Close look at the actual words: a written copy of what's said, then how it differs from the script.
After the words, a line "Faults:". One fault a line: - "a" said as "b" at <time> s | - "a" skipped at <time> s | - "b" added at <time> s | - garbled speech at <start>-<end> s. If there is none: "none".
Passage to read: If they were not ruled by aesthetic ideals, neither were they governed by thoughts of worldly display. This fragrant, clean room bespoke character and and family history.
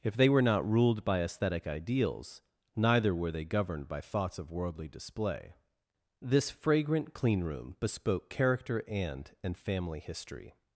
If they were not ruled by aesthetic ideals, neither were they governed by thoughts of worldly display. This fragrant, clean room bespoke character and and family history.
Faults:
none